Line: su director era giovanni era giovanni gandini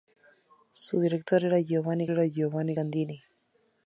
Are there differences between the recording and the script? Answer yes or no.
no